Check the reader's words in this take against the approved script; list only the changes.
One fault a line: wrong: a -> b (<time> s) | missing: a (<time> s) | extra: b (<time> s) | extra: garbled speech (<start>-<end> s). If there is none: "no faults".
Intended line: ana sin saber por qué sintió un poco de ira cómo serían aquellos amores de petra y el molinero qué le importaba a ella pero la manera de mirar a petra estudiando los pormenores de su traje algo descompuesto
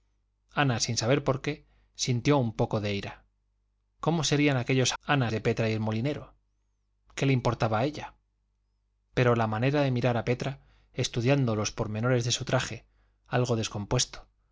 wrong: amores -> ana (5.0 s)